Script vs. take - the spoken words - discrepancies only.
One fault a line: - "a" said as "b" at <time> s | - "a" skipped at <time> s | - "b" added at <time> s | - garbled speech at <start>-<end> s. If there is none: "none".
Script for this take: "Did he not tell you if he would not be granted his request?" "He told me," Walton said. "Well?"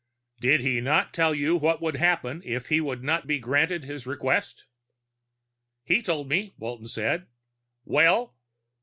- "what would happen" added at 1.6 s